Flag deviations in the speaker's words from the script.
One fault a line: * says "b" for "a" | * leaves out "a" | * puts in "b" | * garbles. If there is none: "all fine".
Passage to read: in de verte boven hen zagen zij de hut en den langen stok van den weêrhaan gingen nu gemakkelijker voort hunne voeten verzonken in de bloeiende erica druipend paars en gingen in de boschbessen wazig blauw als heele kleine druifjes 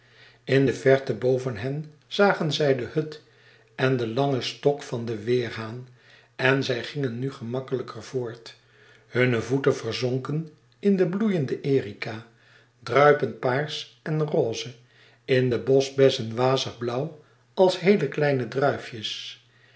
* puts in "en zij"
* says "roze" for "gingen"